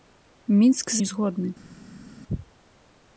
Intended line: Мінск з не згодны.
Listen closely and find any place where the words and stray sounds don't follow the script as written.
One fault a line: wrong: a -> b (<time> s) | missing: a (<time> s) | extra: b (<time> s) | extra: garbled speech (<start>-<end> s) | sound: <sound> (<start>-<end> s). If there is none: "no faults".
no faults